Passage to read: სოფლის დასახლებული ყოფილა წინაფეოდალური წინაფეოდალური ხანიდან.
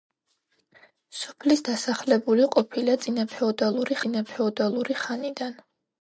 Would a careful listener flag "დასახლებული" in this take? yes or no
no